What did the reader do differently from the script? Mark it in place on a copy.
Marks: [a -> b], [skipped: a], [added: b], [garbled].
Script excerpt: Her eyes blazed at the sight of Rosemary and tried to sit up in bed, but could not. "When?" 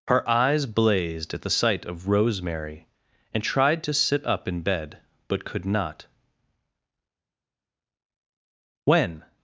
Her eyes blazed at the sight of Rosemary and tried to sit up in bed, but could not. "When?"